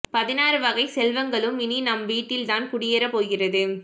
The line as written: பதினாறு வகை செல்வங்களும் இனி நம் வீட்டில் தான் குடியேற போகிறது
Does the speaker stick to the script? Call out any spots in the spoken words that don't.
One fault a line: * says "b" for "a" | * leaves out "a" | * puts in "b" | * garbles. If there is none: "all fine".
all fine